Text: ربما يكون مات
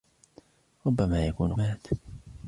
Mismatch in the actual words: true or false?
false